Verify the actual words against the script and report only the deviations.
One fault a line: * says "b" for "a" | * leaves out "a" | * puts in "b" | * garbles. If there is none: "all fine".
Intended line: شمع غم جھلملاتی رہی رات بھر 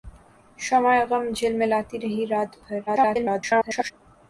* garbles